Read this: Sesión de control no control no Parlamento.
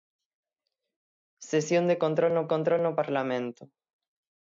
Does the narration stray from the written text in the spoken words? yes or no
no